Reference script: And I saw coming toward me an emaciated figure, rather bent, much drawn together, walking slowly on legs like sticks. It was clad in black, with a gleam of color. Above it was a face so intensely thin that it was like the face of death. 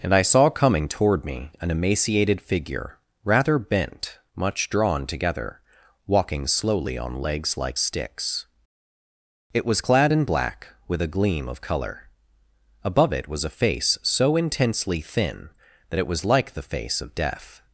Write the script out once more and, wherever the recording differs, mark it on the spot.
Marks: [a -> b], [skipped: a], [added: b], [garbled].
And I saw coming toward me an emaciated figure, rather bent, much drawn together, walking slowly on legs like sticks. It was clad in black, with a gleam of color. Above it was a face so intensely thin that it was like the face of death.